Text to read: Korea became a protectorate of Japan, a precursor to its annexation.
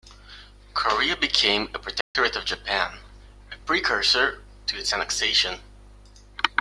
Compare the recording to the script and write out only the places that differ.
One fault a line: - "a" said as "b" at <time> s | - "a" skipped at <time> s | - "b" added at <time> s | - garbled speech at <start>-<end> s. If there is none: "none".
none